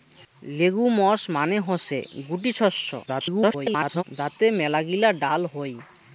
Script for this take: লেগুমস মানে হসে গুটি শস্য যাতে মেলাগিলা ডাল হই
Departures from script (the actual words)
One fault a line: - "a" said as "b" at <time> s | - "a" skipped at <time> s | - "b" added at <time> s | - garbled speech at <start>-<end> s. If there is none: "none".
- garbled speech at 3.1-4.0 s